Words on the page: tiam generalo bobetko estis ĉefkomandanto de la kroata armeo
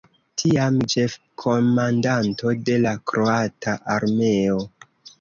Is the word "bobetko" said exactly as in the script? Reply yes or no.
no